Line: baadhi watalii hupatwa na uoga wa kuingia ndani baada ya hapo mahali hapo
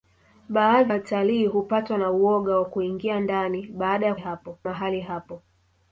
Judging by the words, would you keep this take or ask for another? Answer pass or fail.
pass